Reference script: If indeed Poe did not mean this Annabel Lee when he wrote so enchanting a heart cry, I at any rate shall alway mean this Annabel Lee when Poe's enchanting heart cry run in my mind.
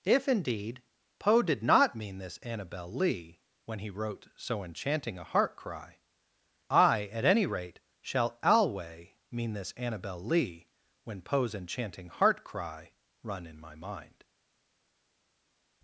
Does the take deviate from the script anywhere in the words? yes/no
no